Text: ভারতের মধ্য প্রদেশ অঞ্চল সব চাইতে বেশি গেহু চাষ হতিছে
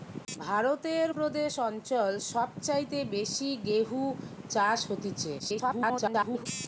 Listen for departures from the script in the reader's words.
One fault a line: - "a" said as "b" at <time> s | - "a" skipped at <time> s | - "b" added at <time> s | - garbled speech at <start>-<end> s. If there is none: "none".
- "মধ্য" skipped at 1.1 s
- garbled speech at 5.4-6.5 s